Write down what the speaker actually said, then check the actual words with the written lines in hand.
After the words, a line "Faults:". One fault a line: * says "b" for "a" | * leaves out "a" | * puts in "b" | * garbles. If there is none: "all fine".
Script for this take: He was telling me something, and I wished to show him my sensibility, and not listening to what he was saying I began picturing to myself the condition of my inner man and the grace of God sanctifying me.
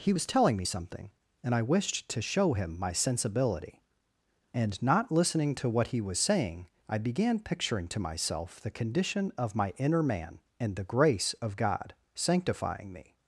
He was telling me something, and I wished to show him my sensibility, and not listening to what he was saying I began picturing to myself the condition of my inner man and the grace of God sanctifying me.
Faults:
all fine